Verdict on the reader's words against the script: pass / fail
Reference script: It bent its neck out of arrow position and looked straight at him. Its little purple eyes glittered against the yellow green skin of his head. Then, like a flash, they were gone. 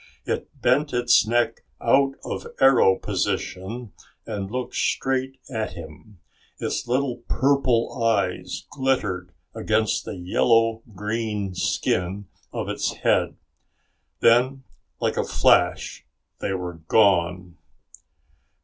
fail